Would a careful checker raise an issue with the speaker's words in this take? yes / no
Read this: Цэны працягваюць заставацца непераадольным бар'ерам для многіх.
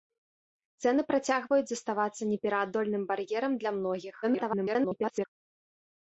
yes